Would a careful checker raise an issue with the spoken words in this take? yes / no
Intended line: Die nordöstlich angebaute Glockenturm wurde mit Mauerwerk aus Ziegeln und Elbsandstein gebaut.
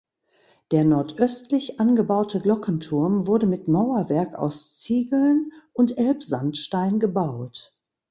yes